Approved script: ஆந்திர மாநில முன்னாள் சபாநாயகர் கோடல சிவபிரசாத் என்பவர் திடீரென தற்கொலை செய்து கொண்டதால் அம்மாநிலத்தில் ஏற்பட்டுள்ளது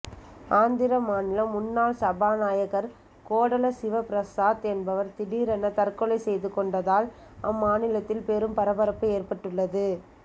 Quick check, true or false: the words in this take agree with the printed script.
false